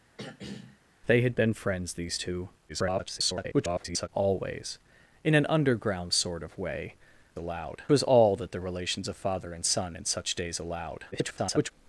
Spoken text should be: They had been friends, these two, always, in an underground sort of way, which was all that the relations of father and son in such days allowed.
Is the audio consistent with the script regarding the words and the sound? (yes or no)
no